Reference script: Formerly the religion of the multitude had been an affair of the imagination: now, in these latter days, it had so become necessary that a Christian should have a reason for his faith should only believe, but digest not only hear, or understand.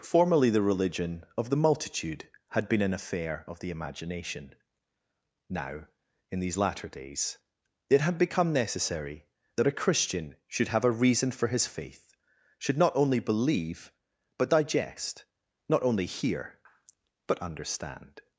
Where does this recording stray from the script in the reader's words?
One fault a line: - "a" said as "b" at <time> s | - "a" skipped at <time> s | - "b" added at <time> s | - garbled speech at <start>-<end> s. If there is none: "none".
- "so" skipped at 8.2 s
- "not" added at 12.8 s
- "or" said as "but" at 17.3 s